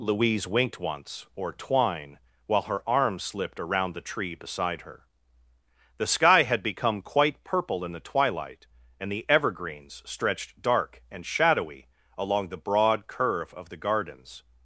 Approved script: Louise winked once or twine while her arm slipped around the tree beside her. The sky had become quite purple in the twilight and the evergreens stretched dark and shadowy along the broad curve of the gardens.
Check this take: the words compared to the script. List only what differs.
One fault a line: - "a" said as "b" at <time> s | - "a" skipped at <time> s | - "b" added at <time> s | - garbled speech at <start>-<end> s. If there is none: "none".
none